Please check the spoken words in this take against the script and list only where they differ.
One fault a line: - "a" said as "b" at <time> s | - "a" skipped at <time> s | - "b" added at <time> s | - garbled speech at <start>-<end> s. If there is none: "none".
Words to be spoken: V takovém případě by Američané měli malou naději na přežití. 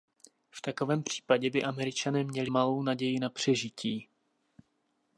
none